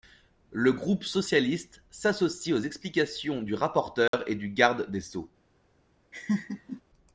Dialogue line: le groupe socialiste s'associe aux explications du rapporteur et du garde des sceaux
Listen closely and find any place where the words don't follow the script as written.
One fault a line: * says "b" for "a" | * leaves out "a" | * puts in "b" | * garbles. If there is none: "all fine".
all fine